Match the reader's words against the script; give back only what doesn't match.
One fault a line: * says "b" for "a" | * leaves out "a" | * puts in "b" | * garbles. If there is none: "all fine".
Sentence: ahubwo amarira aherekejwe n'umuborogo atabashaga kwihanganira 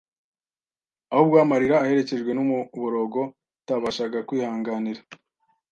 all fine